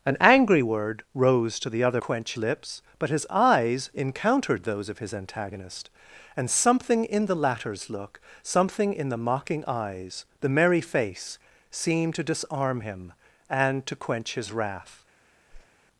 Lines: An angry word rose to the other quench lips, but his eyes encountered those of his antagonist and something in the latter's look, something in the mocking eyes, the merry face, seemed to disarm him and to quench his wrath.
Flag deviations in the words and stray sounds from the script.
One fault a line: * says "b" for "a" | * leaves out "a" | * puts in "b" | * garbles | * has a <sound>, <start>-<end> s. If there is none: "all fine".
* has a whoosh, 15.5-15.7 s